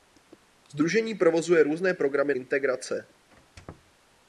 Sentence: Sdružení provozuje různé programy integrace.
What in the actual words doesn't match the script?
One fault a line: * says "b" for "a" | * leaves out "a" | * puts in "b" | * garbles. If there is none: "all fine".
all fine